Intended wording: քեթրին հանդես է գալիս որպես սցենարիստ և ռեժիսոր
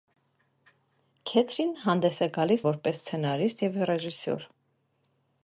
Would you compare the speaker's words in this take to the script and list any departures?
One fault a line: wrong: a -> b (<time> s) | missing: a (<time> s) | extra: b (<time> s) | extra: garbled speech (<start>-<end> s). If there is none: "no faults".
no faults